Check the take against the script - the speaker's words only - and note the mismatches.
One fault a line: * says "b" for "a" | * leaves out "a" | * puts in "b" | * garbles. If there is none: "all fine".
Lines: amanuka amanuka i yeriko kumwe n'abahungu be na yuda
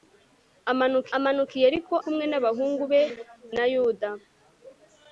all fine